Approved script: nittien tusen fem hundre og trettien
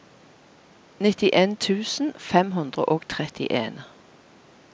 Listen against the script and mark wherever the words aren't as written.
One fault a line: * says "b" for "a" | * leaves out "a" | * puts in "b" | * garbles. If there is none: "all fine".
all fine